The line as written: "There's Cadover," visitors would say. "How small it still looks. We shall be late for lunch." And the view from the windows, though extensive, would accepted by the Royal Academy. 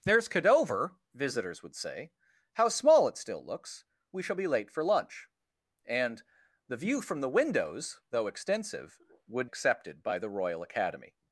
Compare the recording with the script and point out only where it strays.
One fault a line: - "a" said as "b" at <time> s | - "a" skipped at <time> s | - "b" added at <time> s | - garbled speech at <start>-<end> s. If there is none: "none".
none